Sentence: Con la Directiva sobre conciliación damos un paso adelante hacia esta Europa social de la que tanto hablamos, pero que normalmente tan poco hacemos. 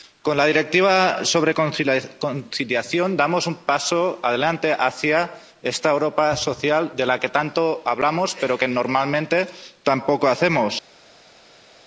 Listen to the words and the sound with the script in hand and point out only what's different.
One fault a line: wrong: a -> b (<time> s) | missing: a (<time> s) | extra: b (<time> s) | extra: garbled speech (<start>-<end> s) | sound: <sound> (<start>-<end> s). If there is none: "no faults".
no faults